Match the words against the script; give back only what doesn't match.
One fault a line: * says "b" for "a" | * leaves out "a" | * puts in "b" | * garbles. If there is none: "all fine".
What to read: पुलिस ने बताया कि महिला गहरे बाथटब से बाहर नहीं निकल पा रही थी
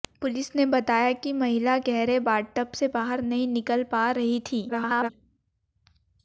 * garbles